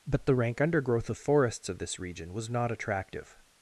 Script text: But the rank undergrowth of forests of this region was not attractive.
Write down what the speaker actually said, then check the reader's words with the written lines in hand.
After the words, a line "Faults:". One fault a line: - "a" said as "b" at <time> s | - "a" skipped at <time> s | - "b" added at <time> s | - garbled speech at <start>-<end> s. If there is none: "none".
But the rank undergrowth of forests of this region was not attractive.
Faults:
none